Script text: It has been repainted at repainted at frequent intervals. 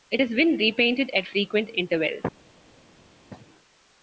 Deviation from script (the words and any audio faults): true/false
true